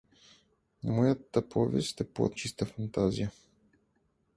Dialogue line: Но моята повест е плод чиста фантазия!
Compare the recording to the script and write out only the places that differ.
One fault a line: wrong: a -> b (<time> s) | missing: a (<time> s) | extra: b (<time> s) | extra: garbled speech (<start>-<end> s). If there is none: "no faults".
no faults